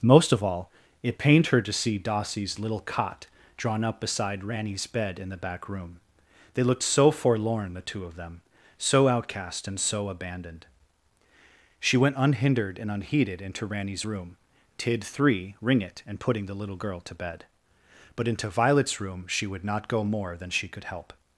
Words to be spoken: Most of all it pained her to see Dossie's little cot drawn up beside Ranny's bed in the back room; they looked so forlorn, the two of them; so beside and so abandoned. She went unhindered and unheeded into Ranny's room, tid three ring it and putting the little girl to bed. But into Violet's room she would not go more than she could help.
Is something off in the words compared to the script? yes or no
yes